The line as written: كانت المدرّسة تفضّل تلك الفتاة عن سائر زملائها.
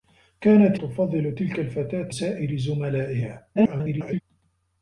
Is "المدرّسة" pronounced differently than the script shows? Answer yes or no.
yes